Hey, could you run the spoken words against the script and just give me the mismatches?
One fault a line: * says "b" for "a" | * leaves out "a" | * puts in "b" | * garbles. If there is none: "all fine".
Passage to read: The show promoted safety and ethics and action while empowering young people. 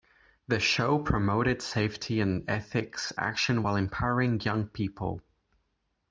* leaves out "and"